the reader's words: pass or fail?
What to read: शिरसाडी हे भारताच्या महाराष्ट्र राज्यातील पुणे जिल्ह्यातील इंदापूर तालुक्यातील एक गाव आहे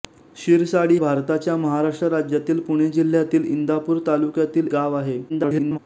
fail